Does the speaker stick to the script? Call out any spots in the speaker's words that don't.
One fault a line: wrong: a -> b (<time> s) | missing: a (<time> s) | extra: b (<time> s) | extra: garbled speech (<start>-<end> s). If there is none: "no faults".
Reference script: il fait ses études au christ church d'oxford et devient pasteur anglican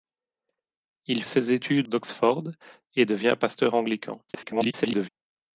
missing: fait (1.2 s)
missing: au christ church (1.9 s)
extra: garbled speech (4.3-5.1 s)